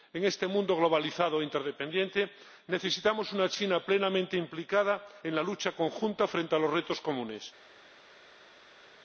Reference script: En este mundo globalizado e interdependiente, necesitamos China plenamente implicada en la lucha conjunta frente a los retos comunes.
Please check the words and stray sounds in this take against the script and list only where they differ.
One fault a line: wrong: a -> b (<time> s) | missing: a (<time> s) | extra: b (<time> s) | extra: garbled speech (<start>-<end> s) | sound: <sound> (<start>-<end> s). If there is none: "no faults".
extra: una (3.3 s)